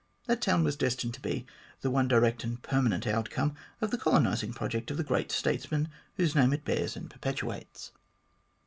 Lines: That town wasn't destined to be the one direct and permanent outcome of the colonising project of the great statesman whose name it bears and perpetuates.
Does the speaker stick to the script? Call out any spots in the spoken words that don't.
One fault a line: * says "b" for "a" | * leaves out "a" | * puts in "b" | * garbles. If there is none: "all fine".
* says "was" for "wasn't"